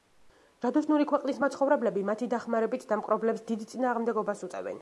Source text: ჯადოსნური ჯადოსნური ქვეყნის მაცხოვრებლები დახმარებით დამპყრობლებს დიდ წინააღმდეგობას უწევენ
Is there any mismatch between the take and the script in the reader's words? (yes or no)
yes